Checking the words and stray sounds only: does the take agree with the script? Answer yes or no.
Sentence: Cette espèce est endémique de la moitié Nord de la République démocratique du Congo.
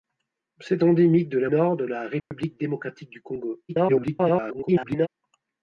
no